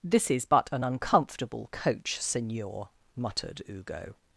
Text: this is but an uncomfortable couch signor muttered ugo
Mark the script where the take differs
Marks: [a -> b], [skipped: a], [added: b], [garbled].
this is but an uncomfortable [couch -> coach] signor muttered ugo